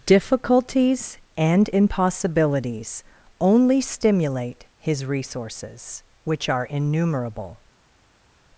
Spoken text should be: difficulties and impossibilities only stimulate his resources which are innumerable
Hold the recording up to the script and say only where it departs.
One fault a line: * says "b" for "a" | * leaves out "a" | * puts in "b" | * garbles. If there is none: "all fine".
all fine